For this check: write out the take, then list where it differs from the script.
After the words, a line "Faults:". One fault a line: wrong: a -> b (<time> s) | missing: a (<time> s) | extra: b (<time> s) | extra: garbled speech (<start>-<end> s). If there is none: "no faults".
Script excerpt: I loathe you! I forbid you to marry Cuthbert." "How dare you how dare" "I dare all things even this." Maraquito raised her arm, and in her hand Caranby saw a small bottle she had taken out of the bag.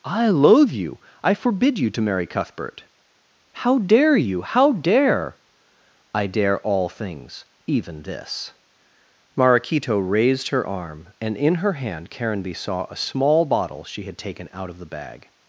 I loathe you! I forbid you to marry Cuthbert." "How dare you how dare" "I dare all things even this." Maraquito raised her arm, and in her hand Caranby saw a small bottle she had taken out of the bag.
Faults:
no faults